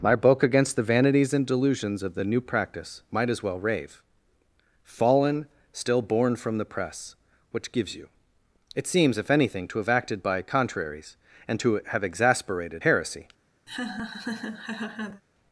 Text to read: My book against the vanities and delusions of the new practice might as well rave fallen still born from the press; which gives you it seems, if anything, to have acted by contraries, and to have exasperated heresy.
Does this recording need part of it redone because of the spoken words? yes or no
no